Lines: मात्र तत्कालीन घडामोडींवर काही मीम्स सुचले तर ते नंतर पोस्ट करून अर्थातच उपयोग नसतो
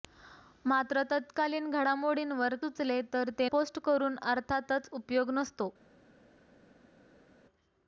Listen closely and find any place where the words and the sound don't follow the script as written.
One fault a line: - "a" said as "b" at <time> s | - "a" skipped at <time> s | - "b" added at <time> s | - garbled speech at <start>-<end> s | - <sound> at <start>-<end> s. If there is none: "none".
- "काही मीम्स" skipped at 2.5 s
- "नंतर" skipped at 3.5 s